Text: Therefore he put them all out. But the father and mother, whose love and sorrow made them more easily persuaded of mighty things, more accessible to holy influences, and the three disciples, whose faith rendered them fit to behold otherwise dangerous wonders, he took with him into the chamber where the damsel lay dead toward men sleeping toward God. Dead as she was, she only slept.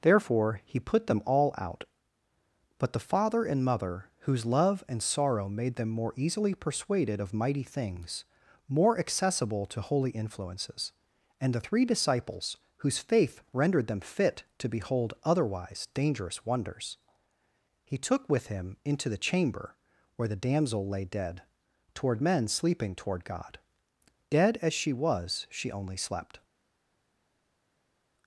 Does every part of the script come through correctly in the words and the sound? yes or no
yes